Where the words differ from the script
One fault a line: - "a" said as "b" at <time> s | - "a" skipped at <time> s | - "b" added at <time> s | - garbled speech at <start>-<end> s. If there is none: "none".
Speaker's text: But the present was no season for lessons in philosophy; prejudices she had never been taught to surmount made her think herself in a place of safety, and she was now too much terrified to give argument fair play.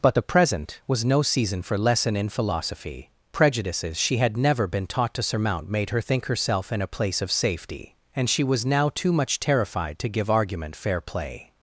- "lessons" said as "lesson" at 1.8 s